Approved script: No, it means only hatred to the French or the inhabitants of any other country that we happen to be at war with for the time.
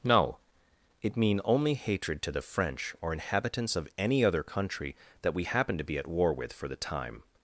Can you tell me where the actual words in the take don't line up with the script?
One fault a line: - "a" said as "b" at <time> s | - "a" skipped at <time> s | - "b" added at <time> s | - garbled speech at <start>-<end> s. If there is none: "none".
- "means" said as "mean" at 1.2 s
- "the" skipped at 3.1 s